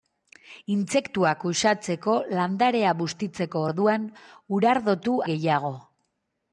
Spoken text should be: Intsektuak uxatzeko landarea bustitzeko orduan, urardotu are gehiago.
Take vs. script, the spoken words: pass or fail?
fail